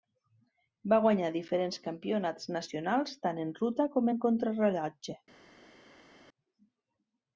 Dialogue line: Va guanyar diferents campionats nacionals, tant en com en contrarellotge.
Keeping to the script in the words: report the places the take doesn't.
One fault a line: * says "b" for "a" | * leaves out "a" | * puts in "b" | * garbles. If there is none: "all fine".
* puts in "ruta"